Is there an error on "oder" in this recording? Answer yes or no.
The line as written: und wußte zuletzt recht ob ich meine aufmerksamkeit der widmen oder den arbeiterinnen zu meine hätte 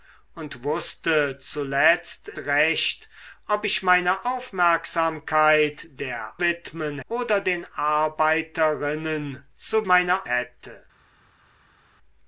no